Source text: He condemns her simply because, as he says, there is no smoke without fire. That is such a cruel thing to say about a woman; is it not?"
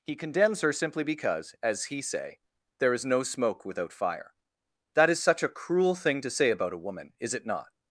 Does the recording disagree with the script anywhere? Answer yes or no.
yes